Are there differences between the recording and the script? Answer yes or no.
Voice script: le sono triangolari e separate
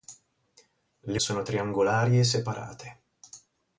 no